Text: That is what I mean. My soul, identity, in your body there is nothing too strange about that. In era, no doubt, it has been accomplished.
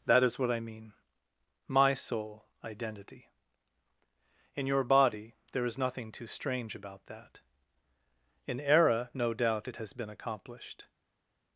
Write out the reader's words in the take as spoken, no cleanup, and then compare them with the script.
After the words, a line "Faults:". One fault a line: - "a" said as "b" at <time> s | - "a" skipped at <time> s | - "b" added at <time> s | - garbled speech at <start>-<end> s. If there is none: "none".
That is what I mean. My soul, identity, in your body there is nothing too strange about that. In era, no doubt, it has been accomplished.
Faults:
none